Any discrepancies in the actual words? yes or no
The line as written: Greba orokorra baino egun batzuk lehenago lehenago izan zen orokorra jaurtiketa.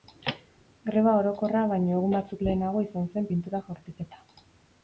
yes